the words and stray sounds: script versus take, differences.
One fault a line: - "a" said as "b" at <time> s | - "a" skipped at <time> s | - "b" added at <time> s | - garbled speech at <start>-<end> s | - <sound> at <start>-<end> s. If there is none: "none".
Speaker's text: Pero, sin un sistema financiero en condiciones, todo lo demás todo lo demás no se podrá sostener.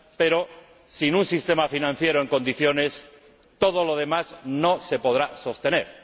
- "todo lo demás" skipped at 4.3 s